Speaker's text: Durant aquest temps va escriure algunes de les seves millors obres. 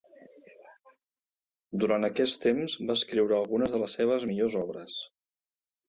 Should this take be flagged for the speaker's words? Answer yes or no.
no